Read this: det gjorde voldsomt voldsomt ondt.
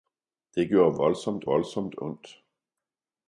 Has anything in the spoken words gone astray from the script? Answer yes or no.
no